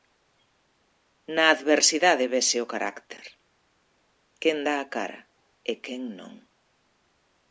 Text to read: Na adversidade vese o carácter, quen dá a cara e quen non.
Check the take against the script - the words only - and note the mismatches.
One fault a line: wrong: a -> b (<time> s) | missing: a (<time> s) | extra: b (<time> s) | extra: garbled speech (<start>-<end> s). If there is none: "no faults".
no faults